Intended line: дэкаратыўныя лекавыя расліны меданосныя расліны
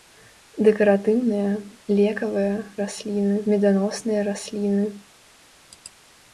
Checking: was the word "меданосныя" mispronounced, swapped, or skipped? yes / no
no